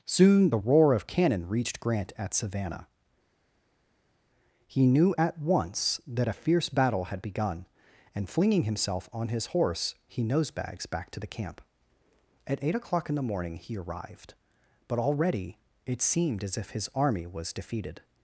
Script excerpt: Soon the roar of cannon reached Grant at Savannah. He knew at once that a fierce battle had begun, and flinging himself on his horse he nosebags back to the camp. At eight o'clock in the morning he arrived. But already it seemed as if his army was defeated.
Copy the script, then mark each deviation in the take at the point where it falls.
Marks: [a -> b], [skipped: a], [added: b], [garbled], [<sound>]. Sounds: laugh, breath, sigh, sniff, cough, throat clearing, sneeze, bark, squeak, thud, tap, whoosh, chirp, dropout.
Soon the roar of cannon reached Grant at Savannah. He knew at once that a fierce battle had begun, and flinging himself on his horse he nosebags back to the camp. At eight o'clock in the morning he arrived. But already it seemed as if his army was defeated.